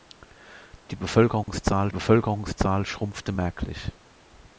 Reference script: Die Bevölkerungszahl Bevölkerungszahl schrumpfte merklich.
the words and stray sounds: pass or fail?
fail